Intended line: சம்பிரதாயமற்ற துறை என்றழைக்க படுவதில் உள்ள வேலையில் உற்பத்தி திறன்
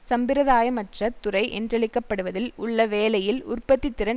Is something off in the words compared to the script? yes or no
no